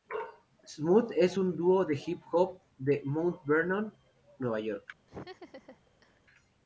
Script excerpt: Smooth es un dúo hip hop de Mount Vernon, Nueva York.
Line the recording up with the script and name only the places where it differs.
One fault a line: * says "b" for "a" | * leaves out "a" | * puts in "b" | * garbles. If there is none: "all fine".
* puts in "de"